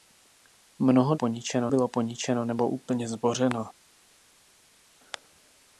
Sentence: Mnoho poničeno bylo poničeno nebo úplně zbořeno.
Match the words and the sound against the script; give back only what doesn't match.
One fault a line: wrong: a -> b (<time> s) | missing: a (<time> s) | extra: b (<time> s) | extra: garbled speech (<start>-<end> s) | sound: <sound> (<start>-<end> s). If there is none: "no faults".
no faults